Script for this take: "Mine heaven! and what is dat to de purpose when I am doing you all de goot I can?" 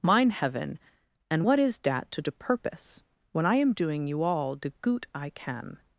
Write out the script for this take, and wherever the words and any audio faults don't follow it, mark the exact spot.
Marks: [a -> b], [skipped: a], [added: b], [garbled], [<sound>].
"Mine heaven! and what is dat to de purpose when I am doing you all de goot I can?"